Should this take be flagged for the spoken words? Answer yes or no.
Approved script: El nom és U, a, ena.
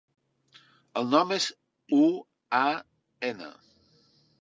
no